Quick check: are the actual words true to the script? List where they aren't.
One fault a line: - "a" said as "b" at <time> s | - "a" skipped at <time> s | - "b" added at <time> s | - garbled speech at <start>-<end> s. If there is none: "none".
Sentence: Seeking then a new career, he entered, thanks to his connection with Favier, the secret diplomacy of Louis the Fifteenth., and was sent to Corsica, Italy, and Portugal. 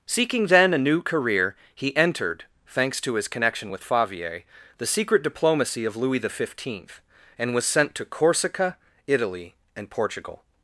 none